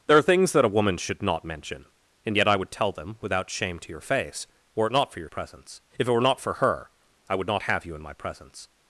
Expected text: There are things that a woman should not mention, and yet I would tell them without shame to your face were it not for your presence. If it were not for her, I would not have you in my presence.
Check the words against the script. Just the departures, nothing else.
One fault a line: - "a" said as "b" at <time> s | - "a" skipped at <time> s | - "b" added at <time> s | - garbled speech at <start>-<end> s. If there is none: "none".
none